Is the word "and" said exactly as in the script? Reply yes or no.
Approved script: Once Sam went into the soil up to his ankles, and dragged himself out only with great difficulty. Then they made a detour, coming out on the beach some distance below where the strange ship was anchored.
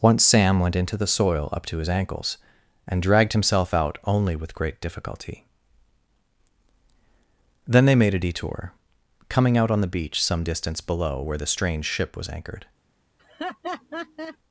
yes